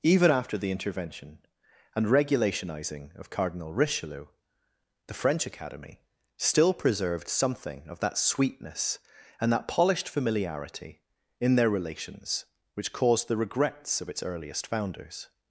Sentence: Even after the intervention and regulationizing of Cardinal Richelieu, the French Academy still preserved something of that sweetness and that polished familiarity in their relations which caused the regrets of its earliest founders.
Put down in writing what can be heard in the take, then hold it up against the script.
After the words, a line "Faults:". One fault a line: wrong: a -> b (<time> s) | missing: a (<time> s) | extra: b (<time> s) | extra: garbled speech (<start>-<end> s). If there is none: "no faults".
Even after the intervention and regulationizing of Cardinal Richelieu, the French Academy still preserved something of that sweetness and that polished familiarity in their relations which caused the regrets of its earliest founders.
Faults:
no faults